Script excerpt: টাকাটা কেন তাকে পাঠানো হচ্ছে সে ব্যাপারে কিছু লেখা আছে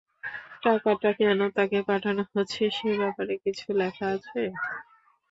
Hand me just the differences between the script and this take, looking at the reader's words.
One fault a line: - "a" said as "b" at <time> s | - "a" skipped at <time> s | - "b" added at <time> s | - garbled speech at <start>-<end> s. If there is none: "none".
none